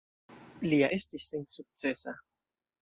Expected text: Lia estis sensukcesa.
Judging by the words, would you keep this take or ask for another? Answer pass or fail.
pass